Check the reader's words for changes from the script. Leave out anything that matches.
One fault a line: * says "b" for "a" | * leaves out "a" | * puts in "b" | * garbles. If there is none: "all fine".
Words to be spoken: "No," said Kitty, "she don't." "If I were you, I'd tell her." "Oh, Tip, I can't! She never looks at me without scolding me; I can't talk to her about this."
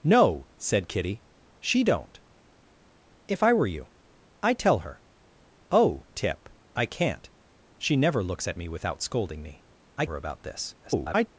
* leaves out "can't talk to"
* garbles